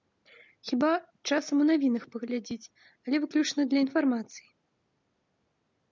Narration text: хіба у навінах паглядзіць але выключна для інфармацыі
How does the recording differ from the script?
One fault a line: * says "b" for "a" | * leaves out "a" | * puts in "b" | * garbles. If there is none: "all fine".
* puts in "часам"